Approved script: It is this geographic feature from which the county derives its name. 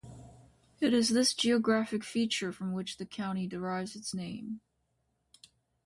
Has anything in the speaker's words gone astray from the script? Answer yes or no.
no